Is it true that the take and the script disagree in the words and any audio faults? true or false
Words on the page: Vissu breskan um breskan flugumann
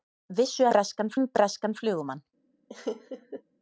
true